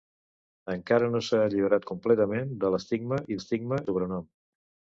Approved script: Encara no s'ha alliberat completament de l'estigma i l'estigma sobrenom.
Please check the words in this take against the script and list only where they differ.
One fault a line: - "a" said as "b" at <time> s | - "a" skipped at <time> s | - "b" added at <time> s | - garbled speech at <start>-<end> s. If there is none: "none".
none